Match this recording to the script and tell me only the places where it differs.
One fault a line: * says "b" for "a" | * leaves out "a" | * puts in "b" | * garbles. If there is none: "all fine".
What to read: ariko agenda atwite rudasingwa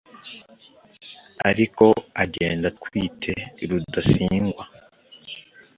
all fine